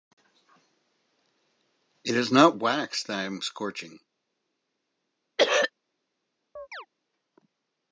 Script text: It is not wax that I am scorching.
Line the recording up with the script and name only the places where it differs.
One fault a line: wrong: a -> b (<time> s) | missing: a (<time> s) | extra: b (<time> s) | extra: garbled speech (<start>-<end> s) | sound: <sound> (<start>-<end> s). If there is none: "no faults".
sound: throat clearing (5.4-5.7 s)
sound: chirp (6.6-6.9 s)